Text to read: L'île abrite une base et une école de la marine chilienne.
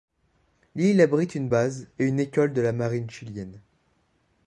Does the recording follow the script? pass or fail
pass